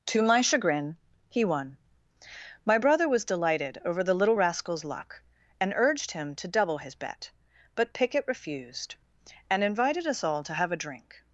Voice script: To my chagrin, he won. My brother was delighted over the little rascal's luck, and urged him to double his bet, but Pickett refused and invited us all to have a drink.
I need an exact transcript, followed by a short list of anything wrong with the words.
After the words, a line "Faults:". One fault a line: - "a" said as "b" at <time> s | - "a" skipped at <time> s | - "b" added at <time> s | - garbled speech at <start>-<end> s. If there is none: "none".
To my chagrin, he won. My brother was delighted over the little rascal's luck, and urged him to double his bet, but Pickett refused and invited us all to have a drink.
Faults:
none